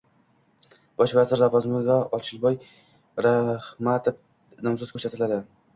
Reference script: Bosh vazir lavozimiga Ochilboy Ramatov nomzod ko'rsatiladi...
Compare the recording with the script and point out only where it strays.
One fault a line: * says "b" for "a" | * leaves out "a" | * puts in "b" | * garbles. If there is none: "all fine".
all fine